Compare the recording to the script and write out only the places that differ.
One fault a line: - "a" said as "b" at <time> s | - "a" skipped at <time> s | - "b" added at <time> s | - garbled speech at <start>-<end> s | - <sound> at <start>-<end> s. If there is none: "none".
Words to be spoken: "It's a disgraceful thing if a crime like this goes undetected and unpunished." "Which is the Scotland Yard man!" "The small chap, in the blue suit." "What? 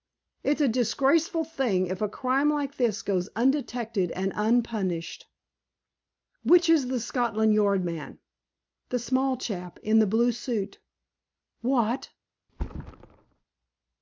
- thud at 12.5-13.4 s